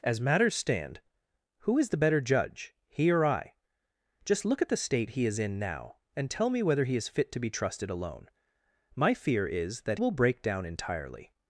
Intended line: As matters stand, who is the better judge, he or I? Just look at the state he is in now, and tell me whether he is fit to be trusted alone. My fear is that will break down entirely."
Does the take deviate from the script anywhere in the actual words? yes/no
no